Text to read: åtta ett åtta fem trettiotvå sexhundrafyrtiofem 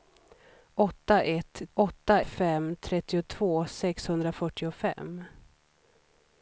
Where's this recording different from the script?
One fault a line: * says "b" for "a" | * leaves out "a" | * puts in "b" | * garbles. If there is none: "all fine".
all fine